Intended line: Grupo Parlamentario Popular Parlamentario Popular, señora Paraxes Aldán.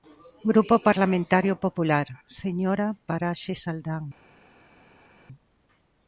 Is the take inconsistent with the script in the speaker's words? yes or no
yes